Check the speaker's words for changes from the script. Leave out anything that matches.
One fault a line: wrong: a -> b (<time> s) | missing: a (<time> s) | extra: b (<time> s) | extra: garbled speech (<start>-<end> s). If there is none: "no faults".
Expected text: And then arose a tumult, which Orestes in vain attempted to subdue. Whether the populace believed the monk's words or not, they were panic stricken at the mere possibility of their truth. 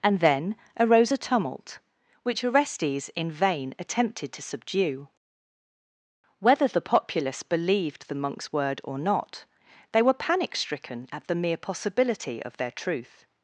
wrong: words -> word (8.5 s)